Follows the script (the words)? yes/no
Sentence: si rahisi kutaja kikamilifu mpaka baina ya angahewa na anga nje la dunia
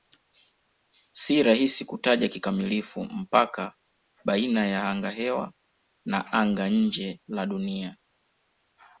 yes